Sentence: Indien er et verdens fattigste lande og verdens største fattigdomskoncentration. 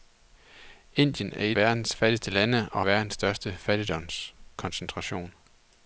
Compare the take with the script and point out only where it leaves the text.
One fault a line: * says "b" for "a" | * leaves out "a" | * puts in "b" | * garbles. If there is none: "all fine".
all fine